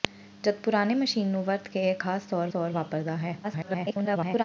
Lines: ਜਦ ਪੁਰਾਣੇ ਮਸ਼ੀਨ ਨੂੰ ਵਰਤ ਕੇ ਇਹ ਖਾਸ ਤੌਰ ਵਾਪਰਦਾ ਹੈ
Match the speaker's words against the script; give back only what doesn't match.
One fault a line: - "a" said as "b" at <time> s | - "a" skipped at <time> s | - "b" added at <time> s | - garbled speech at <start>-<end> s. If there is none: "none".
- "ਤੌਰ" added at 2.5 s
- garbled speech at 3.4-4.4 s